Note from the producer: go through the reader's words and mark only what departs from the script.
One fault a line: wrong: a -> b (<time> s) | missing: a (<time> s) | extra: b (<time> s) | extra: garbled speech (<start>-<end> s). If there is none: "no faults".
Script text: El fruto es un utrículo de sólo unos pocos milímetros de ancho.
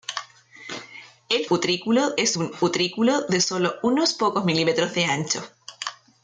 wrong: fruto -> utrículo (1.5 s)